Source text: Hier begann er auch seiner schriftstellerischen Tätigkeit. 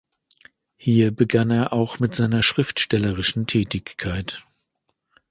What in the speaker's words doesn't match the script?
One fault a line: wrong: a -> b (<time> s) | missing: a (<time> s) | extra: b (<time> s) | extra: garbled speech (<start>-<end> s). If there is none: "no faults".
extra: mit (2.0 s)